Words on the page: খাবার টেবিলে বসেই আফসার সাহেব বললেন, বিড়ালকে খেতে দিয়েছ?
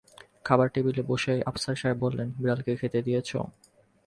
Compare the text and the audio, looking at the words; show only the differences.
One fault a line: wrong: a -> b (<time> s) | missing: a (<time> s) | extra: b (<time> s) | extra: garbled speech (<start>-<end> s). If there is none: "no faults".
no faults